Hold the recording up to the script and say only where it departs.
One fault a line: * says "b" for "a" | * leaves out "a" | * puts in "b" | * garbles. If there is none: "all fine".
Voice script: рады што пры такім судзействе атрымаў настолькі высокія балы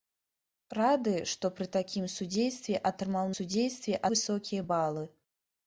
* says "судзействе" for "настолькі"